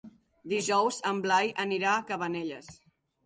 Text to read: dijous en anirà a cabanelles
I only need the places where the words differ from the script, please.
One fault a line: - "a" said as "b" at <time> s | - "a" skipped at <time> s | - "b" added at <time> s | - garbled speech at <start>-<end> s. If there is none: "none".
- "blai" added at 1.3 s